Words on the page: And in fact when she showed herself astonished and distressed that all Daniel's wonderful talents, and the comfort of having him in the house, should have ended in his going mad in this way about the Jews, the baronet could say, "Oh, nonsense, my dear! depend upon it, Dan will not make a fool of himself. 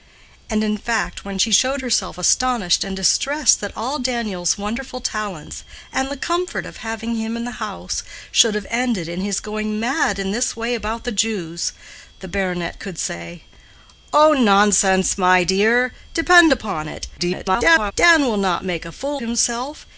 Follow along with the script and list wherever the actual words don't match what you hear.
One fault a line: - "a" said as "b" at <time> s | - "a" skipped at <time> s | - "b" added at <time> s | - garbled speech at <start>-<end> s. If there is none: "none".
- garbled speech at 17.2-17.9 s
- "of" skipped at 19.2 s